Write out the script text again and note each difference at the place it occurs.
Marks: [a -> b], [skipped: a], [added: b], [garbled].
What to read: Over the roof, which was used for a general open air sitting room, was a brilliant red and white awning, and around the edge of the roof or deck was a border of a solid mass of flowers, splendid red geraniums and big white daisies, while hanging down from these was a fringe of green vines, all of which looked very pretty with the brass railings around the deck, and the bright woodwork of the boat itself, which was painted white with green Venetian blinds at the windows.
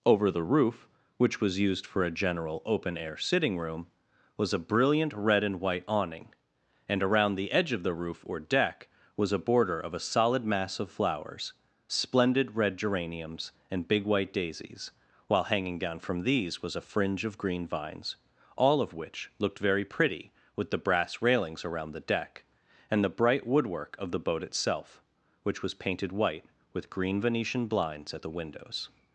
Over the roof, which was used for a general open air sitting room, was a brilliant red and white awning, and around the edge of the roof or deck was a border of a solid mass of flowers, splendid red geraniums and big white daisies, while hanging down from these was a fringe of green vines, all of which looked very pretty with the brass railings around the deck, and the bright woodwork of the boat itself, which was painted white with green Venetian blinds at the windows.